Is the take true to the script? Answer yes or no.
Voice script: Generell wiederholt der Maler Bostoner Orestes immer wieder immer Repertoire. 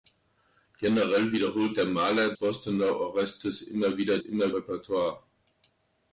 yes